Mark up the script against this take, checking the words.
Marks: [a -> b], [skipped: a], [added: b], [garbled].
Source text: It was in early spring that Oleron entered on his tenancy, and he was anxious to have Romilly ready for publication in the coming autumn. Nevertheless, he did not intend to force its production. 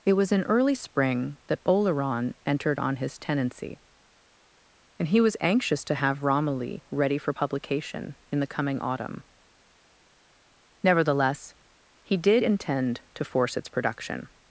It was in early spring that Oleron entered on his tenancy, and he was anxious to have Romilly ready for publication in the coming autumn. Nevertheless, he did [skipped: not] intend to force its production.